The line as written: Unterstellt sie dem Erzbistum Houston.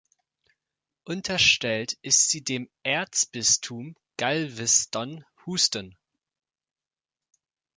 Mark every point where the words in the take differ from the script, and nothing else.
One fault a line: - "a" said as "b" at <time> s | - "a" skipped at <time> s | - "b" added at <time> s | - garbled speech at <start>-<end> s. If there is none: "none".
- "ist" added at 2.0 s
- "Galveston" added at 4.2 s